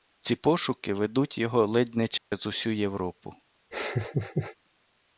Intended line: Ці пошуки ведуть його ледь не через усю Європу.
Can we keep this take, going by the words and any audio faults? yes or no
no